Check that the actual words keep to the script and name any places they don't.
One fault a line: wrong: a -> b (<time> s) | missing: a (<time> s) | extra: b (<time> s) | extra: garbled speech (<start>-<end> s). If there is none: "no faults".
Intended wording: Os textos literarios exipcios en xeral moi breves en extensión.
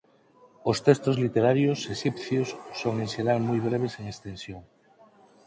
extra: son (2.8 s)